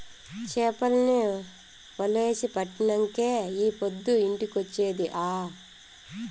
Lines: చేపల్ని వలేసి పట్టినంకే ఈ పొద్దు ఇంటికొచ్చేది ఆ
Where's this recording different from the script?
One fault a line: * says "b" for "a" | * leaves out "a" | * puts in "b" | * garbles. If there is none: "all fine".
all fine